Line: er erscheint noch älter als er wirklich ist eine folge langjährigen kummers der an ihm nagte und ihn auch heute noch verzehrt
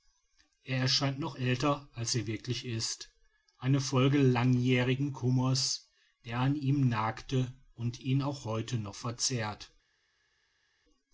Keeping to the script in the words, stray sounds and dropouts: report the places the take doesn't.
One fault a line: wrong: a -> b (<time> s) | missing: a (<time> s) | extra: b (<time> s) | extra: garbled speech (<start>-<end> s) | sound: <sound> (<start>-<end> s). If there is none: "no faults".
no faults